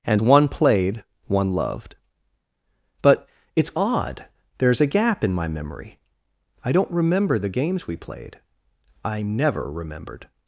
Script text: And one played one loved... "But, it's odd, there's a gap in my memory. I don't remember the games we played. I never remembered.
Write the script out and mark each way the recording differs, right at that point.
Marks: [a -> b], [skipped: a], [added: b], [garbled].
And one played one loved... "But, it's odd, there's a gap in my memory. I don't remember the games we played. I never remembered.